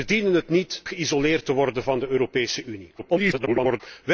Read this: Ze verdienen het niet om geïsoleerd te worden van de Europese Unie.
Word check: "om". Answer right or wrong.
wrong